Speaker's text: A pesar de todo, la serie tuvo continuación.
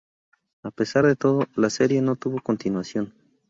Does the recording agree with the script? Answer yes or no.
no